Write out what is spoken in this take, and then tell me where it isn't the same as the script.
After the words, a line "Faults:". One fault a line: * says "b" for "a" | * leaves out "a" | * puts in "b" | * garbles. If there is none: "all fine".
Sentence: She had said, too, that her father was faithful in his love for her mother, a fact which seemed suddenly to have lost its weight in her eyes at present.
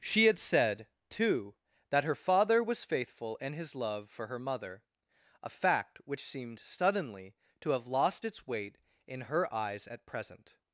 She had said, too, that her father was faithful in his love for her mother, a fact which seemed suddenly to have lost its weight in her eyes at present.
Faults:
all fine